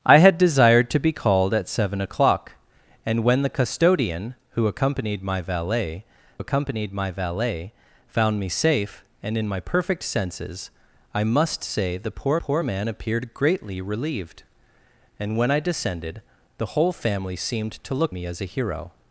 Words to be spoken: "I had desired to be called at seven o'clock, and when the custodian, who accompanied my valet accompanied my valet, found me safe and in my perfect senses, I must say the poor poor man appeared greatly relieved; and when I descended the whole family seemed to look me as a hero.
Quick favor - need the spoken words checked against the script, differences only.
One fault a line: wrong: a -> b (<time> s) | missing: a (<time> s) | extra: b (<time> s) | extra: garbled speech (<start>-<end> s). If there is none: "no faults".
no faults